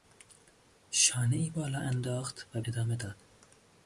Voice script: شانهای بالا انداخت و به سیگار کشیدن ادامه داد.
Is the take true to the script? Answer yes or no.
no